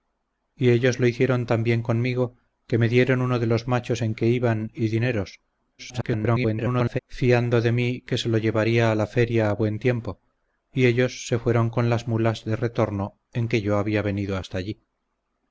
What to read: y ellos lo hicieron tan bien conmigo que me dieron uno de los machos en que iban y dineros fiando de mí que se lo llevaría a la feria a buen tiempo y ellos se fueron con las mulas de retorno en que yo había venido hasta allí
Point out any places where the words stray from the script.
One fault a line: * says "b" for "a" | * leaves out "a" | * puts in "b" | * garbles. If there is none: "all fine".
* garbles